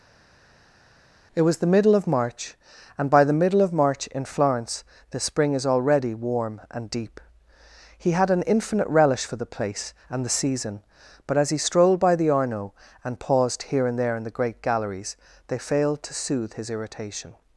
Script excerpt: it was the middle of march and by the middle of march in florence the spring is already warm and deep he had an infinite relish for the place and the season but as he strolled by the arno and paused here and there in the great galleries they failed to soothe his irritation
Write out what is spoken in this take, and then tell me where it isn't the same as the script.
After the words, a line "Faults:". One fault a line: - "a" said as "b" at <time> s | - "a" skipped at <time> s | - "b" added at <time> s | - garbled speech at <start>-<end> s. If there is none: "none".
it was the middle of march and by the middle of march in florence the spring is already warm and deep he had an infinite relish for the place and the season but as he strolled by the arno and paused here and there in the great galleries they failed to soothe his irritation
Faults:
none